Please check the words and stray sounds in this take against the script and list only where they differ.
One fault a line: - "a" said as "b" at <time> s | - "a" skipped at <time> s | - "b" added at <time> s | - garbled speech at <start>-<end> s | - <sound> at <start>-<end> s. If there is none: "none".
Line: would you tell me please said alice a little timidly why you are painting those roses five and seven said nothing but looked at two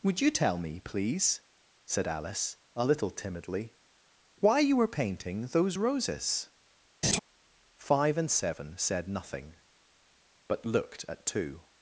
- "are" said as "were" at 4.8 s
- laugh at 7.0-7.2 s